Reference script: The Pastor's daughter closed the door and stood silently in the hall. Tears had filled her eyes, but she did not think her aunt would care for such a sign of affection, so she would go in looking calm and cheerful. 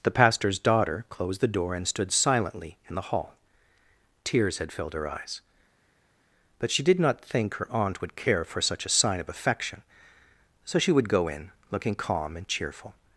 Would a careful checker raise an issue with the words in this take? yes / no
no